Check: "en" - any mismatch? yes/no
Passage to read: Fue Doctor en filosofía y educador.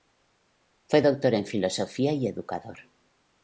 no